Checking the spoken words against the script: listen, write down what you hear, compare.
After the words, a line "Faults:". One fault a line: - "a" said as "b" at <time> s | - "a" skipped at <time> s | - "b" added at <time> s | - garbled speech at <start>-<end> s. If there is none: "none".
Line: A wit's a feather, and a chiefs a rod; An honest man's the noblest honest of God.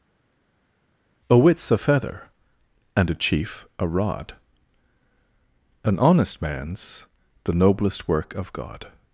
A wit's a feather, and a chief a rod; An honest man's the noblest work of God.
Faults:
- "chiefs" said as "chief" at 3.1 s
- "honest" said as "work" at 8.1 s